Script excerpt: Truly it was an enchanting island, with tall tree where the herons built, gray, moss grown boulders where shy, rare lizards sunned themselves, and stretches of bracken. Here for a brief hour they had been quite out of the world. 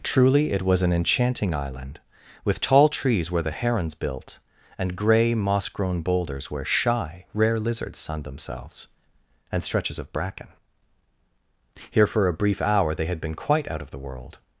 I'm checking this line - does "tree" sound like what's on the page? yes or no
no